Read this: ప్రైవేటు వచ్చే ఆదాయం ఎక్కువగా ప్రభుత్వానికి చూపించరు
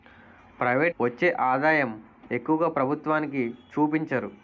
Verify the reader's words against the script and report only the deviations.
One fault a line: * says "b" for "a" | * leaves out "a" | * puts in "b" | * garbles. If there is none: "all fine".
all fine